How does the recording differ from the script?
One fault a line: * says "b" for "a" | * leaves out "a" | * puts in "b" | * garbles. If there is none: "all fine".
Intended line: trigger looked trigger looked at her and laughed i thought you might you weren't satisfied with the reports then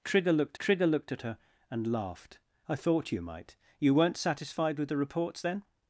all fine